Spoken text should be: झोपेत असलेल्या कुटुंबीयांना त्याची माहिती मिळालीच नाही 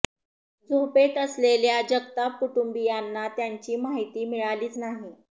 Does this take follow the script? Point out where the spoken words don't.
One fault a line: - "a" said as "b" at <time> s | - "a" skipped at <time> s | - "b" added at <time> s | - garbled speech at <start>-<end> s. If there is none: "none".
- "जगताप" added at 1.9 s